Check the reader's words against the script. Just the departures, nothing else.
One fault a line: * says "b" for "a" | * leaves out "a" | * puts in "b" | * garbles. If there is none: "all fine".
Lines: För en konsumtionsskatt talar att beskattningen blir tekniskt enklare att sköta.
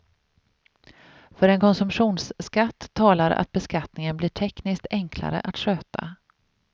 all fine